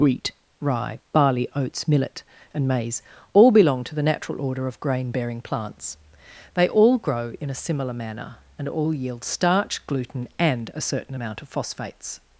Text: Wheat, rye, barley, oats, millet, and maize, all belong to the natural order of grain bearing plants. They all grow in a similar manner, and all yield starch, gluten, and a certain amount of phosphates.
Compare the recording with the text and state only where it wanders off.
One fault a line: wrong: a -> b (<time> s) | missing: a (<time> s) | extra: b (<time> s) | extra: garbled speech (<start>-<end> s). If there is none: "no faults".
no faults